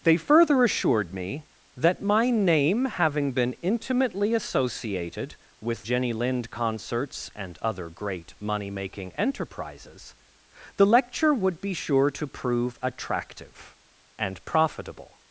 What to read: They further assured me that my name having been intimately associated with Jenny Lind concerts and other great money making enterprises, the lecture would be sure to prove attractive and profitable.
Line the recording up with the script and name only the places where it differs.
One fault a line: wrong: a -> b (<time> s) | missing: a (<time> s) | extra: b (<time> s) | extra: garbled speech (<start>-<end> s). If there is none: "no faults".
no faults